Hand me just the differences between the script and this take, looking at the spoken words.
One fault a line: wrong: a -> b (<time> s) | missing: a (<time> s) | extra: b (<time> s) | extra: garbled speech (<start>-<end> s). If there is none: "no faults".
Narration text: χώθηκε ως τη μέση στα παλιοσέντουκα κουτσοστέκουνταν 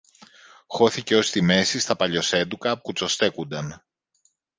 no faults